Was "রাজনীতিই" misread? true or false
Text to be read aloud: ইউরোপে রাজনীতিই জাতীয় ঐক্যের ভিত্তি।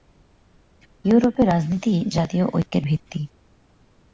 false